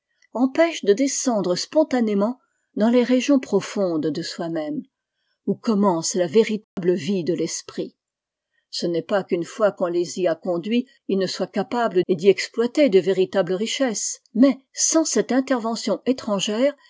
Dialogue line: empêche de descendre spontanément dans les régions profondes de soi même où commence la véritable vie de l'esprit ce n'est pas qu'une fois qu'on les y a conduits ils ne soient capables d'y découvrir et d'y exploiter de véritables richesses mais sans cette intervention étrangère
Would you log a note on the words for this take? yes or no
yes